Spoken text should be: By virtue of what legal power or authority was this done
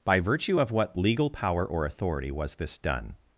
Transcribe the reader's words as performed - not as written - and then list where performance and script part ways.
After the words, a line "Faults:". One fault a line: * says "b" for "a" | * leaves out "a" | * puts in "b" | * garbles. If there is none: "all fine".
By virtue of what legal power or authority was this done
Faults:
all fine